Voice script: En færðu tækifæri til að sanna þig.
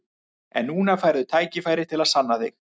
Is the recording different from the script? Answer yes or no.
yes